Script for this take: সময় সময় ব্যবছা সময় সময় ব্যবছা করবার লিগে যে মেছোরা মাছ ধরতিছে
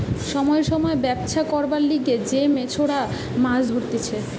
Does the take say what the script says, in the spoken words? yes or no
no